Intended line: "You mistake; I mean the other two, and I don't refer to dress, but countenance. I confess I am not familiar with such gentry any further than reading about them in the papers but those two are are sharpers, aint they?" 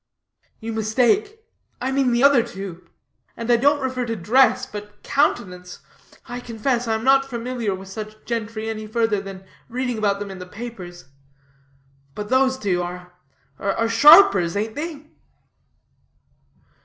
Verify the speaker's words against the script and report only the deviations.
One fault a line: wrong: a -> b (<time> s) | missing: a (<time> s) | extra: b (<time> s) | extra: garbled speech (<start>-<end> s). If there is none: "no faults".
no faults